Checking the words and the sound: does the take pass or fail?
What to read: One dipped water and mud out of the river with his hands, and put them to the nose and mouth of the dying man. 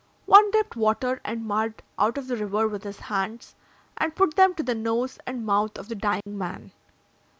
fail